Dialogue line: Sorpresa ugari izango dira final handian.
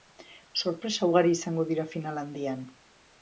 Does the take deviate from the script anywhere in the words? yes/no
no